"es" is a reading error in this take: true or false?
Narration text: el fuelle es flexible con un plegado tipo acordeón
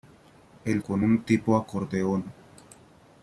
true